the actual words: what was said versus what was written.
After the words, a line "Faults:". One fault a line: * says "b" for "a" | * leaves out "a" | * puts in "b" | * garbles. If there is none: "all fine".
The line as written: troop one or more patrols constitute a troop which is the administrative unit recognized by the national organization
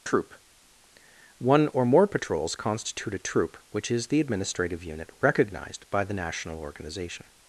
troop one or more patrols constitute a troop which is the administrative unit recognized by the national organization
Faults:
all fine